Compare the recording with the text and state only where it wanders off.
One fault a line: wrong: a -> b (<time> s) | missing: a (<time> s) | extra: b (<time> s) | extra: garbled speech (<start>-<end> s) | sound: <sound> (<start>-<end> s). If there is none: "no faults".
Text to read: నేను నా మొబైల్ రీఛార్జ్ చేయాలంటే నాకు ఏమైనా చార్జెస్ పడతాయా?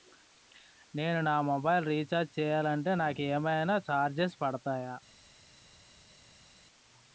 no faults